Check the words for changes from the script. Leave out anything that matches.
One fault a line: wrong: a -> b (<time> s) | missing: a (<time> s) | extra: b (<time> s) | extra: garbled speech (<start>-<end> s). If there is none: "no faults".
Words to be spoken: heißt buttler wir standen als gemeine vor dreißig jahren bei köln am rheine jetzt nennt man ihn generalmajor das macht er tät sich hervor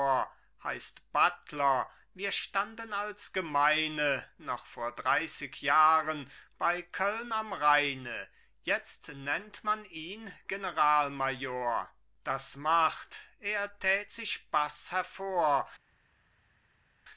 extra: noch (4.4 s)
extra: baß (14.5 s)